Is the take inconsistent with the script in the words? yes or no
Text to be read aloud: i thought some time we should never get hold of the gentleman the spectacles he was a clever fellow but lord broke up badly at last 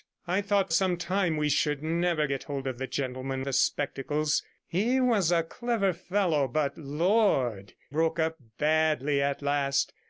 no